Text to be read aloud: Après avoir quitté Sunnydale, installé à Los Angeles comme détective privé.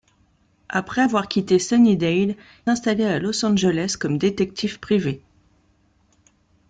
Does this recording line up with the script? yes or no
yes